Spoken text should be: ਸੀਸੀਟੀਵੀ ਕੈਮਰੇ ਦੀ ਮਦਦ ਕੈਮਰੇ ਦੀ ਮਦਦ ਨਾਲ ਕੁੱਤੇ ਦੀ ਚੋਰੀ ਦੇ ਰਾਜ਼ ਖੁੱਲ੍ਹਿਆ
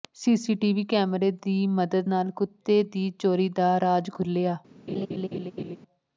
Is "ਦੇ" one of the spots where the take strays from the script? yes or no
yes